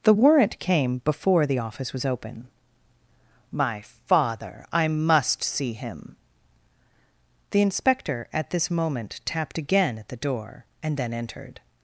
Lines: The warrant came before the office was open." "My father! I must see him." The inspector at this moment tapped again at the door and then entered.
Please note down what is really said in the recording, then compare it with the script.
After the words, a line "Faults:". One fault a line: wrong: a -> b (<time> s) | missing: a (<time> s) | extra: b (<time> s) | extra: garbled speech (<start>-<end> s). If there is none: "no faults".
The warrant came before the office was open." "My father! I must see him." The inspector at this moment tapped again at the door and then entered.
Faults:
no faults